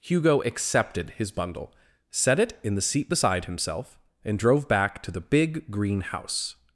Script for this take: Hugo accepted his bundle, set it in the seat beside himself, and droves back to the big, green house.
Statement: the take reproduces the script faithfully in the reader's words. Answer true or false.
false